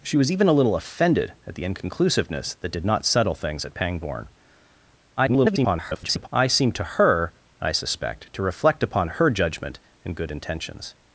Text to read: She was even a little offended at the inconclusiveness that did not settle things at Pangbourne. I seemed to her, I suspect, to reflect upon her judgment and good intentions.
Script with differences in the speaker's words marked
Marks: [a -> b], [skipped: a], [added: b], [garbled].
She was even a little offended at the inconclusiveness that did not settle things at Pangbourne. [garbled] I seemed to her, I suspect, to reflect upon her judgment and good intentions.